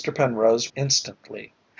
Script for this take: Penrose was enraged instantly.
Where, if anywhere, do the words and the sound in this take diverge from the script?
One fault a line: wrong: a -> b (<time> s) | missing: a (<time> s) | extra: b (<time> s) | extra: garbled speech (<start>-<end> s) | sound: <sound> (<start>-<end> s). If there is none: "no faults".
missing: was enraged (0.7 s)